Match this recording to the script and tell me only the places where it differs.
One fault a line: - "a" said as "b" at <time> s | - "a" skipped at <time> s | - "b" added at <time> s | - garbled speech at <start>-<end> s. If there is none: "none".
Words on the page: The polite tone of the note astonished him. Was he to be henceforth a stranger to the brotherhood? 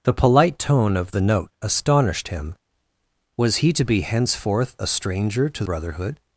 - "the" skipped at 5.6 s